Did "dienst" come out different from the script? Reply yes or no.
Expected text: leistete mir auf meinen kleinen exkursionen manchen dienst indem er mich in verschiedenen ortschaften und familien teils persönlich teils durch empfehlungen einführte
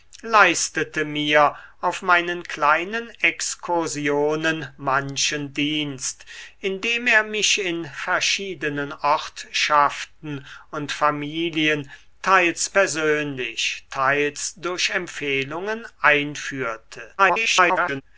no